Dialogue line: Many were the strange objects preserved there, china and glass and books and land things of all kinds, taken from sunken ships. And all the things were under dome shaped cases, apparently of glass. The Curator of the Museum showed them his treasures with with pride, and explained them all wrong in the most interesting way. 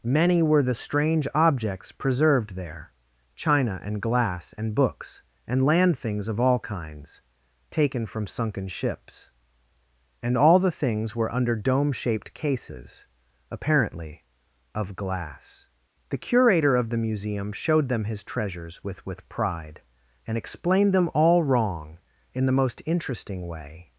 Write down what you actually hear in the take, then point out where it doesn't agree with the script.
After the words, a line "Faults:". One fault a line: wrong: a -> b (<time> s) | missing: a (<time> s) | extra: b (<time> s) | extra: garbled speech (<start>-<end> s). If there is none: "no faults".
Many were the strange objects preserved there, china and glass and books and land things of all kinds, taken from sunken ships. And all the things were under dome shaped cases, apparently of glass. The Curator of the Museum showed them his treasures with with pride, and explained them all wrong in the most interesting way.
Faults:
no faults